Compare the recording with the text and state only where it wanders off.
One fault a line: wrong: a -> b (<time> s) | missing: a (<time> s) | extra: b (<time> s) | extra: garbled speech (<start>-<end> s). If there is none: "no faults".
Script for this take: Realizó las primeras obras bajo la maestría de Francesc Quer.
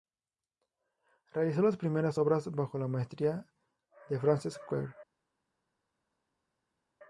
no faults